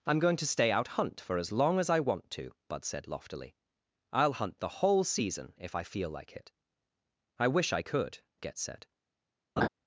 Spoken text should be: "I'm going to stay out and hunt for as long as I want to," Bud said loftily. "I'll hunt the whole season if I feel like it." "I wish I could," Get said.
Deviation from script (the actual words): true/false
true